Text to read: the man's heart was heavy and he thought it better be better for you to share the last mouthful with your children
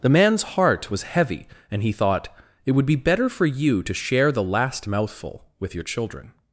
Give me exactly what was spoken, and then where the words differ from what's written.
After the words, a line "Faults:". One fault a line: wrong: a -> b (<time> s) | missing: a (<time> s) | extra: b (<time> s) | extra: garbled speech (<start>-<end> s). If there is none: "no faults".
the man's heart was heavy and he thought it would be better for you to share the last mouthful with your children
Faults:
wrong: better -> would (2.7 s)